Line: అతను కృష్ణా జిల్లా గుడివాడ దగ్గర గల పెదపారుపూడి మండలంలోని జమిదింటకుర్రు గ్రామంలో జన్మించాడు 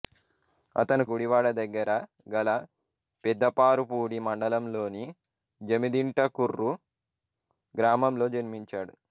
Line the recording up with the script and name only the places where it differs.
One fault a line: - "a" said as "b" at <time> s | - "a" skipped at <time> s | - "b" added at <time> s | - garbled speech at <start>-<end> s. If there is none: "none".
- "కృష్ణా జిల్లా" skipped at 1.0 s